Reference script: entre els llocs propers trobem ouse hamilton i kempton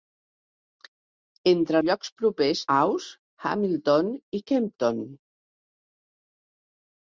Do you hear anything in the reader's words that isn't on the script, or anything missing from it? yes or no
yes